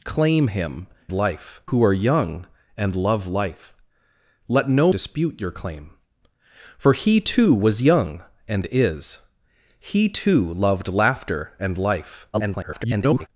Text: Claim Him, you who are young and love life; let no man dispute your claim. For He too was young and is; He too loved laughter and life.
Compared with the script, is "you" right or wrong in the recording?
wrong